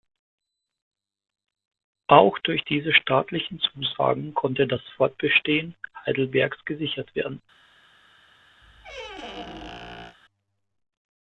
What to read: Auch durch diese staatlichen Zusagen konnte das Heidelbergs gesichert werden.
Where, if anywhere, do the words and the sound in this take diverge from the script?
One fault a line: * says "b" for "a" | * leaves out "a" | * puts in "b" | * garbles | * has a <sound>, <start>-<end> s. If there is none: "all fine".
* puts in "Fortbestehen"
* has a squeak, 8.6-10.2 s